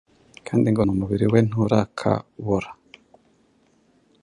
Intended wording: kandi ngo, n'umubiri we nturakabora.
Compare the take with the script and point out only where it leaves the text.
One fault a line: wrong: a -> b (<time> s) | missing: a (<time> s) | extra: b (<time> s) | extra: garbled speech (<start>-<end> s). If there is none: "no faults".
no faults